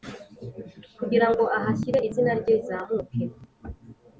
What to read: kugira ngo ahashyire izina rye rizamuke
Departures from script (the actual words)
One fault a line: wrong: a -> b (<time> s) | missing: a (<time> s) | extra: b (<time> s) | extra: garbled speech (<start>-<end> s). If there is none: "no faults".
no faults